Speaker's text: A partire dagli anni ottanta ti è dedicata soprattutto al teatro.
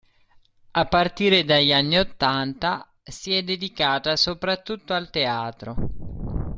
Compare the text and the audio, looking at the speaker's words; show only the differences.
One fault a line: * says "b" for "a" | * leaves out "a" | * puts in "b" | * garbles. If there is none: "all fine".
* says "si" for "ti"